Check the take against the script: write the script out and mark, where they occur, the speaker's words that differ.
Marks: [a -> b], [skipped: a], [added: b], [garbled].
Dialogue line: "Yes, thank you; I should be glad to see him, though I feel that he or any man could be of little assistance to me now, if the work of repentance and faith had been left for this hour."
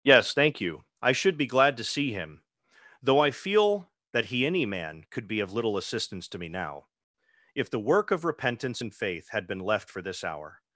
"Yes, thank you; I should be glad to see him, though I feel that he [skipped: or] any man could be of little assistance to me now, if the work of repentance and faith had been left for this hour."